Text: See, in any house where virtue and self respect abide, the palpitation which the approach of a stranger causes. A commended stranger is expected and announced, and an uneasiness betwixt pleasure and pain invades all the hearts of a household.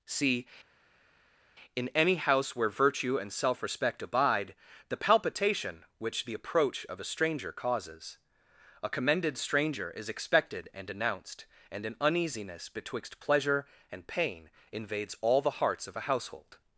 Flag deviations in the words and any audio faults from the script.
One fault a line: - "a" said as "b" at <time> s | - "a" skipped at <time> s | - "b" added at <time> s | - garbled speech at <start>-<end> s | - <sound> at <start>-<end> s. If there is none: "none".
none